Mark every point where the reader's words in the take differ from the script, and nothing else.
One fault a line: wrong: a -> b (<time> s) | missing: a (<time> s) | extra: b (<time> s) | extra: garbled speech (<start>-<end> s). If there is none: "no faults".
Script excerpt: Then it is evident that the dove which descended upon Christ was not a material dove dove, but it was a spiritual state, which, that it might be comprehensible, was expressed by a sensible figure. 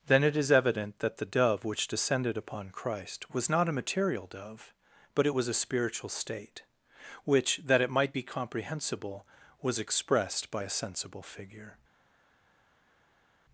missing: dove (4.7 s)